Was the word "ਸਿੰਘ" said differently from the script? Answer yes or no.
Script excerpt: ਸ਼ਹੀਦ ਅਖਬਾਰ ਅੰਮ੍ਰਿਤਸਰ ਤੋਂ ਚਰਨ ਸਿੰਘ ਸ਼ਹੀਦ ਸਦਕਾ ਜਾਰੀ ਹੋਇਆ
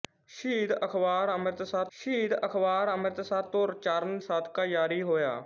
yes